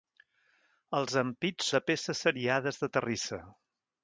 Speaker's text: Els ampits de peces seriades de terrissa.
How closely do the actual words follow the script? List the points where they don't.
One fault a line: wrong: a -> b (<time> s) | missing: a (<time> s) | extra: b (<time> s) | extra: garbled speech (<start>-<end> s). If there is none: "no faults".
no faults